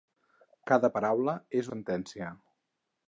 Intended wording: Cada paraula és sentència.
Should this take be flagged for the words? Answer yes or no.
no